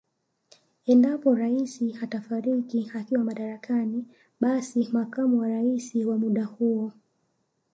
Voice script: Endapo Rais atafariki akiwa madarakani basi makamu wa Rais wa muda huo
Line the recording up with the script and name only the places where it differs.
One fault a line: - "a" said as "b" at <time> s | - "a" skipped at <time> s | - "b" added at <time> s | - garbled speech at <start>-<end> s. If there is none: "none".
none